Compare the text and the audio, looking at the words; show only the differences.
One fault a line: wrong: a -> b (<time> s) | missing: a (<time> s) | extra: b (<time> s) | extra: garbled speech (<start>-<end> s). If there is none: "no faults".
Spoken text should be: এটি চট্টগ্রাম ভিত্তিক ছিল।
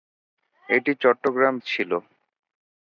missing: ভিত্তিক (1.6 s)